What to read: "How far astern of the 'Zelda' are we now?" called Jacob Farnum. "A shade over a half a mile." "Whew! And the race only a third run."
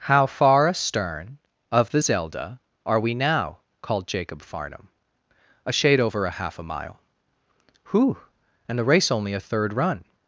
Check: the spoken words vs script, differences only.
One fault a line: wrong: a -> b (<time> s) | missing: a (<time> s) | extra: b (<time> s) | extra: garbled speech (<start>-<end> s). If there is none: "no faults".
no faults